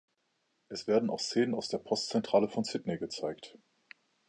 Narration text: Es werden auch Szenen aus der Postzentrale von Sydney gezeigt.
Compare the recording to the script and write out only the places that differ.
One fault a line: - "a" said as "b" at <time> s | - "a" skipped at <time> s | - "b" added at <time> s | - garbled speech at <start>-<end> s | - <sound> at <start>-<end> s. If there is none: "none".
none